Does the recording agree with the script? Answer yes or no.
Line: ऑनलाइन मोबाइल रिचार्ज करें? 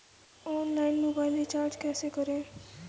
no